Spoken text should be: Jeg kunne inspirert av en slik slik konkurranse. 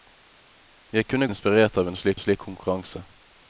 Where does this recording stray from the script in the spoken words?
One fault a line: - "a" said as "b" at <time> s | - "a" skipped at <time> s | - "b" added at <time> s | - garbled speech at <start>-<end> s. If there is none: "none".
none